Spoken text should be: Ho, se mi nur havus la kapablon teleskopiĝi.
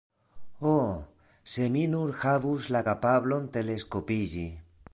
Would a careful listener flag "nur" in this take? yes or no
no